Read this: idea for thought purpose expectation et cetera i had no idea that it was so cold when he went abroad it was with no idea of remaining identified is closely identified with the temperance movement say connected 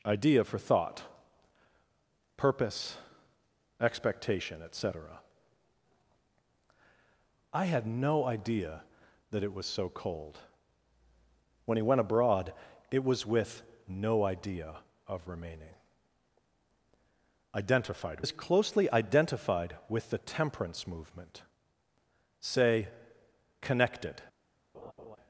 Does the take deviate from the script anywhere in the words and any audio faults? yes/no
yes